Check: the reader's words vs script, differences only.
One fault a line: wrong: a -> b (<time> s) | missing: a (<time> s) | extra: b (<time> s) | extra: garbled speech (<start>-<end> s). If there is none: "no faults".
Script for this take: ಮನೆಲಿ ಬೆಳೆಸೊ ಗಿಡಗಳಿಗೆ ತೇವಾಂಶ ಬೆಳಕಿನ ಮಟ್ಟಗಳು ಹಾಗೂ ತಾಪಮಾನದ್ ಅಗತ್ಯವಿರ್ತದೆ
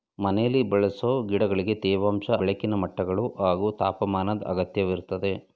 no faults